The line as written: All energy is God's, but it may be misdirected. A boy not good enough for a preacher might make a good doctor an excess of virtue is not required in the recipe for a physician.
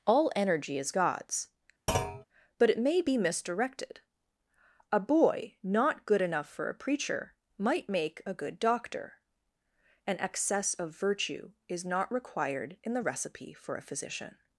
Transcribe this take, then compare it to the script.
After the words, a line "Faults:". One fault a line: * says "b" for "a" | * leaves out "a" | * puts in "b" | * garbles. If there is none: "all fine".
All energy is God's, but it may be misdirected. A boy not good enough for a preacher might make a good doctor an excess of virtue is not required in the recipe for a physician.
Faults:
all fine